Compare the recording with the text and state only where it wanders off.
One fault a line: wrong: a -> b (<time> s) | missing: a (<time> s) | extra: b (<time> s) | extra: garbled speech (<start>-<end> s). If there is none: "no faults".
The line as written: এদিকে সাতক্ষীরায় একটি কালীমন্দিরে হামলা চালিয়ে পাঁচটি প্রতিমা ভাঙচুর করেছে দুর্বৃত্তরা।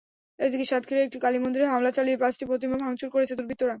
no faults